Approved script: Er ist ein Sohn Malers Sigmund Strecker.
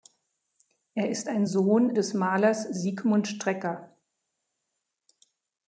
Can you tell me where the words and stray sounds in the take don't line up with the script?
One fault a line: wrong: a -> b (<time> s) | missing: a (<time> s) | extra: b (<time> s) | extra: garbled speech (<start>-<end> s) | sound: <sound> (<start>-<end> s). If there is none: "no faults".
extra: des (1.9 s)